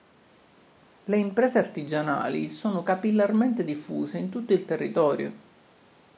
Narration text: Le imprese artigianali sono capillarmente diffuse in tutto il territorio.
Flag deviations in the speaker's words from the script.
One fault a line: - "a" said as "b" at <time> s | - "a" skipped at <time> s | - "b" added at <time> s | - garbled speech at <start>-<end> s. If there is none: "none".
none